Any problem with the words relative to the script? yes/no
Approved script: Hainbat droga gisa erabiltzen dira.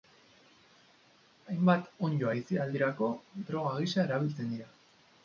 yes